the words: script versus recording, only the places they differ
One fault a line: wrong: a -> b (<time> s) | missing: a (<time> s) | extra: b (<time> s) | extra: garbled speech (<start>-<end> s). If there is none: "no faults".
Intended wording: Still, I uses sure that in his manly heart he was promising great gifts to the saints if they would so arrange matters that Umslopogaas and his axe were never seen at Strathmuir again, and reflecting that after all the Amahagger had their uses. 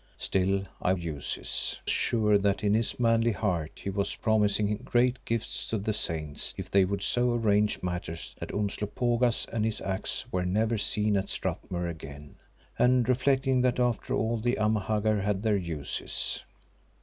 no faults